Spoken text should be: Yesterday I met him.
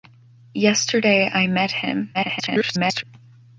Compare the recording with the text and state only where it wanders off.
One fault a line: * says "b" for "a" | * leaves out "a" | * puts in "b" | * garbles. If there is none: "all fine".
* garbles